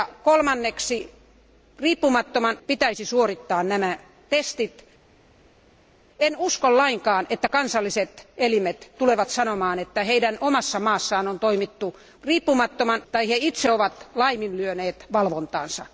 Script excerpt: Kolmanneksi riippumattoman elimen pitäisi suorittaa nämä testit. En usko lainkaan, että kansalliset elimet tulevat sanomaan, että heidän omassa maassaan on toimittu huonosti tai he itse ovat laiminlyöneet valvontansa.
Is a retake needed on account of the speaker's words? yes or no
yes